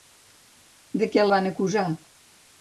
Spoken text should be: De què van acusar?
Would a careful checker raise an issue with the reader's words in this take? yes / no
no